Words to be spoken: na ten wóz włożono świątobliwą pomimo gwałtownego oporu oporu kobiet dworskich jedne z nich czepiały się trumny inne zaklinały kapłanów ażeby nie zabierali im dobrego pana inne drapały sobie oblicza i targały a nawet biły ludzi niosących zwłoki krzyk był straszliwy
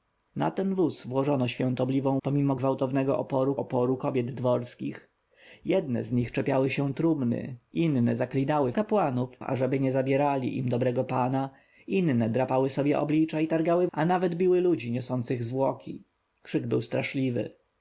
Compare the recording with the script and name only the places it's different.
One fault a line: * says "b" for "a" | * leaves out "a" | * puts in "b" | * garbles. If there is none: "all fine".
all fine